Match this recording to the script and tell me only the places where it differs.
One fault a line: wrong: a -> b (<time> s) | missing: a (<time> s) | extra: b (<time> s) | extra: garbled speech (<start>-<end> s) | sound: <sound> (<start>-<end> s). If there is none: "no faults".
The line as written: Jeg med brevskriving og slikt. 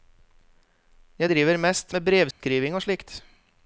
extra: driver mest (1.3 s)
sound: dropout (2.3-2.4 s)